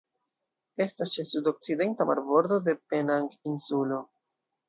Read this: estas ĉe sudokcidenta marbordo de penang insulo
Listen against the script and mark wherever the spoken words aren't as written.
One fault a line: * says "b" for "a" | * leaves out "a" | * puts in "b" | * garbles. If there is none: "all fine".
all fine